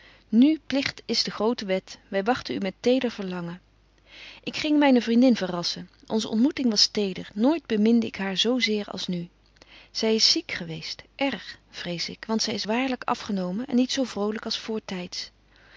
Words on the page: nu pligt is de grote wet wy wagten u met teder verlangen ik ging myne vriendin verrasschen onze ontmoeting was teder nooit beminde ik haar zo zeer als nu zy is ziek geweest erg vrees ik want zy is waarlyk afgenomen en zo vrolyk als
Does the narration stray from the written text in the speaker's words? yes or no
yes